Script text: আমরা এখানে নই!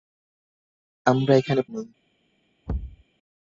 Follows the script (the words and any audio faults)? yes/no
no